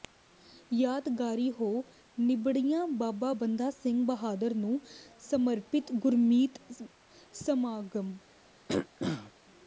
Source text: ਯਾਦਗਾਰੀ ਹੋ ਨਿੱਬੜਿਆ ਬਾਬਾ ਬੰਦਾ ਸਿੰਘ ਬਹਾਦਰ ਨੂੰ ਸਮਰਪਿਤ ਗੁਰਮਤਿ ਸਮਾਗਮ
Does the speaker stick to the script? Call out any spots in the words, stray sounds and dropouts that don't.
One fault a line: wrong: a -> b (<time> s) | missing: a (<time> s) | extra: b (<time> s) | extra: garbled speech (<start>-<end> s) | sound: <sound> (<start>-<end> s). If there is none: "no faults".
sound: throat clearing (8.7-9.3 s)